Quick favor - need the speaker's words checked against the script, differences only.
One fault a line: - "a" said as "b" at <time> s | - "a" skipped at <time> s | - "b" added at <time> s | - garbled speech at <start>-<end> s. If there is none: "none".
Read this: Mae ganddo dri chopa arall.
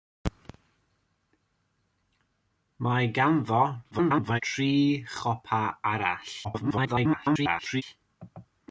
- garbled speech at 3.9-4.4 s
- garbled speech at 6.4-7.8 s